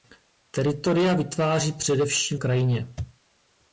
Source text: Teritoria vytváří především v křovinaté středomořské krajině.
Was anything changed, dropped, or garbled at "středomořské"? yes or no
yes